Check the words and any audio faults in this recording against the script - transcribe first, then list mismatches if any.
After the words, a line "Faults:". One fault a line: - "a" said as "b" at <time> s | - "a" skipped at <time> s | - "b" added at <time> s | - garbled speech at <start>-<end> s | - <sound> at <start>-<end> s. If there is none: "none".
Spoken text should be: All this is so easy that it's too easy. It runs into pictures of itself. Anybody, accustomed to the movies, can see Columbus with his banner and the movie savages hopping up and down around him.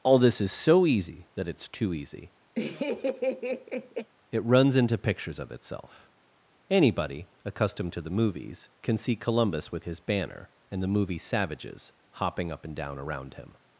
All this is so easy that it's too easy. It runs into pictures of itself. Anybody, accustomed to the movies, can see Columbus with his banner and the movie savages hopping up and down around him.
Faults:
- laugh at 2.6-4.1 s